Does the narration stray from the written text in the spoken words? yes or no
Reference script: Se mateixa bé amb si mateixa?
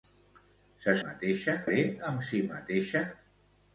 no